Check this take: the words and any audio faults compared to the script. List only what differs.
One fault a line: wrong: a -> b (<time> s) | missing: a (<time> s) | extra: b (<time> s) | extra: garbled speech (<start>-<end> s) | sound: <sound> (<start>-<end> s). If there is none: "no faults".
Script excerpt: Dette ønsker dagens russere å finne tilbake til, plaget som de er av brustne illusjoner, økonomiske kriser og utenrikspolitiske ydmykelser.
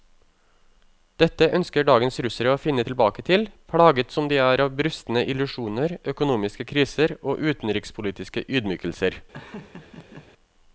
sound: laugh (9.3-10.3 s)